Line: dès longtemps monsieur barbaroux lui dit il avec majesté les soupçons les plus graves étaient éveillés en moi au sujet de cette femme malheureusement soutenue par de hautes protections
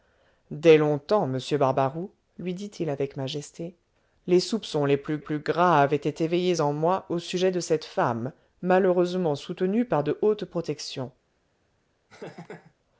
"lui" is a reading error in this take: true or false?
false